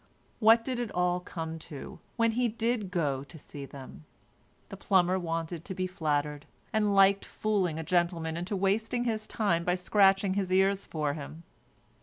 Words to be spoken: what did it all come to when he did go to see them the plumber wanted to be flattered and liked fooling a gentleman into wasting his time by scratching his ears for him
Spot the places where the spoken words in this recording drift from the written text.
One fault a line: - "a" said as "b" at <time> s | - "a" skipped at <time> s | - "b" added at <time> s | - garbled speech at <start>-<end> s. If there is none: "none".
none